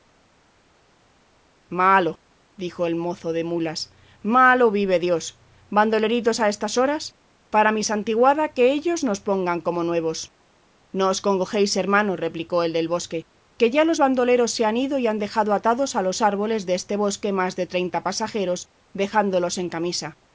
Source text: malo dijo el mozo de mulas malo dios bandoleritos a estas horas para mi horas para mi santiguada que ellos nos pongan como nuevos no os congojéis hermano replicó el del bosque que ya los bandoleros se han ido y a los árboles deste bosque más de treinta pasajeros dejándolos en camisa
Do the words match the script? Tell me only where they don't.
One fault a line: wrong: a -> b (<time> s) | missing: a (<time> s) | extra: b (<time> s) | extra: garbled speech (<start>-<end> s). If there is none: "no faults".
extra: vive (4.7 s)
missing: horas para mi (7.8 s)
extra: han dejado atados (15.1 s)